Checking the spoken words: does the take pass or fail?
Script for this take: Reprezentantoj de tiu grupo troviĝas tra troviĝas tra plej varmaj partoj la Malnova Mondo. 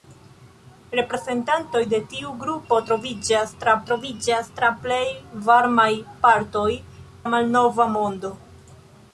pass